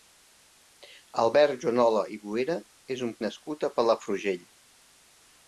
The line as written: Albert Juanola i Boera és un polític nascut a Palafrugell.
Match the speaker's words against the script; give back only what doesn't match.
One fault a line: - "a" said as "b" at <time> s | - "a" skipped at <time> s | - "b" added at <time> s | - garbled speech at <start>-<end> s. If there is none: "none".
- "polític" skipped at 3.1 s